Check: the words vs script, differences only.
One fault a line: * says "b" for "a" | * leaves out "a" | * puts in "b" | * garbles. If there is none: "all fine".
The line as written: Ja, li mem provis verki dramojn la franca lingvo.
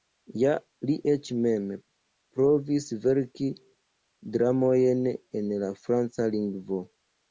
* puts in "eĉ"
* puts in "en"